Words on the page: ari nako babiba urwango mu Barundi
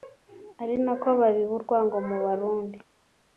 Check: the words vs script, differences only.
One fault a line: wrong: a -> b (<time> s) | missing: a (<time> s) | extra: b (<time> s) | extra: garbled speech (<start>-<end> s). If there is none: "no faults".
no faults